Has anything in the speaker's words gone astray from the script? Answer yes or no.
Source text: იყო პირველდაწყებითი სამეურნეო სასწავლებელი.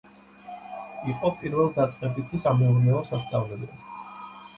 no